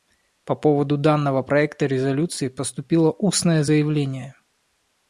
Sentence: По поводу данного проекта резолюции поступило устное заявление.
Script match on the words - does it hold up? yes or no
yes